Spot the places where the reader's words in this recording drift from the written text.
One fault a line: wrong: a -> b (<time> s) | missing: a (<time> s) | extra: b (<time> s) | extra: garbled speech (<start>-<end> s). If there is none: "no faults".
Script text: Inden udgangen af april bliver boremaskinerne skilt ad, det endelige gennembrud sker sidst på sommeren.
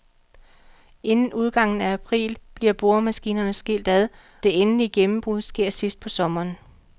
no faults